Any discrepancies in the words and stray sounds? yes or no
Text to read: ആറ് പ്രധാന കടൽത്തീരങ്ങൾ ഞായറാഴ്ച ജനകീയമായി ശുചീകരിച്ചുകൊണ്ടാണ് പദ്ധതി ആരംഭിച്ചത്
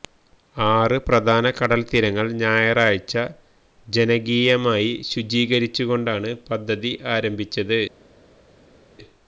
no